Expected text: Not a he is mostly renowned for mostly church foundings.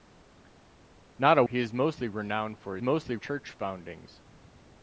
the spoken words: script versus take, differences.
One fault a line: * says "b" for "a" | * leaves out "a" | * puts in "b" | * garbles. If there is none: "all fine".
all fine